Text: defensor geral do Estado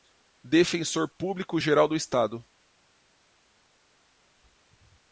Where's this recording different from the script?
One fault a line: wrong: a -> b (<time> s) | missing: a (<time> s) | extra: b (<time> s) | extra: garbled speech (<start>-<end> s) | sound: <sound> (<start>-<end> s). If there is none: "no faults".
extra: público (1.1 s)